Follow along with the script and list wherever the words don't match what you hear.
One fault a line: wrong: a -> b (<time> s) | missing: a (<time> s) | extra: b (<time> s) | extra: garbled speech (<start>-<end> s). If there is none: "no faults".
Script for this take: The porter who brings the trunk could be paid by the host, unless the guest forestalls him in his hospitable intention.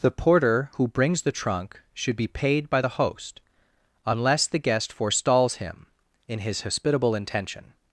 wrong: could -> should (1.9 s)